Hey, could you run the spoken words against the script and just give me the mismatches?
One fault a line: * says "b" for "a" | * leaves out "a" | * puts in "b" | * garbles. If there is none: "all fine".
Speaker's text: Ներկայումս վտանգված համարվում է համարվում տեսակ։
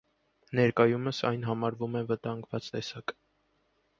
* says "այն" for "վտանգված"
* says "վտանգված" for "համարվում"